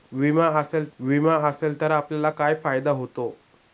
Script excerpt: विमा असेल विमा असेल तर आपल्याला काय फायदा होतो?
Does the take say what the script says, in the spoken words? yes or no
yes